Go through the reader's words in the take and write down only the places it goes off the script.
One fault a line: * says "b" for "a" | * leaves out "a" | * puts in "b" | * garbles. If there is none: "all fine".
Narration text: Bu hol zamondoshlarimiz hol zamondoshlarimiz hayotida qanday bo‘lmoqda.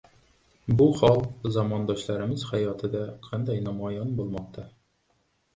* leaves out "hol zamondoshlarimiz"
* puts in "namoyon"